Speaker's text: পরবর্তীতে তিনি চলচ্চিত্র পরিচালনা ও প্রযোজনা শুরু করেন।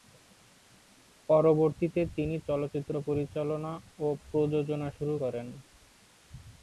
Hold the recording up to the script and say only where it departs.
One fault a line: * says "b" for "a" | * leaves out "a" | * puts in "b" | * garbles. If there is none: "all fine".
all fine